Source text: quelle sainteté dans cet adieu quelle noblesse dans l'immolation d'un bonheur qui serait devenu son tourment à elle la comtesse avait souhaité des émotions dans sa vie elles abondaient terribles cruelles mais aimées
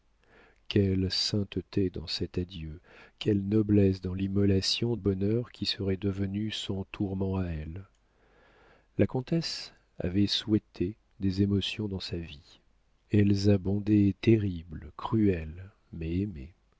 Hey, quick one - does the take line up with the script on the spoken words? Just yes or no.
no